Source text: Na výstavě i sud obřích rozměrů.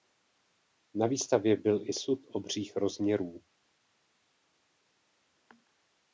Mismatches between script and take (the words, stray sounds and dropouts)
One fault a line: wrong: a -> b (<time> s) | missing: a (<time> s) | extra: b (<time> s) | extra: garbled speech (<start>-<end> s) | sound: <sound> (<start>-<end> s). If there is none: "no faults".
extra: byl (1.6 s)